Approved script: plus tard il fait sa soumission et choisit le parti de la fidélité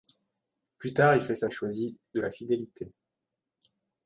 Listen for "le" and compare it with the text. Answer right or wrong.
wrong